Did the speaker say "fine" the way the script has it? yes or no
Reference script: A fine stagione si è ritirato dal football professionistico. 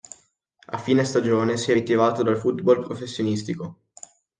yes